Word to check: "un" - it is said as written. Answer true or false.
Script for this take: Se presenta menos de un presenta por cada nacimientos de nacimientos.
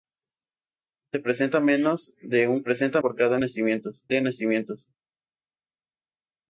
true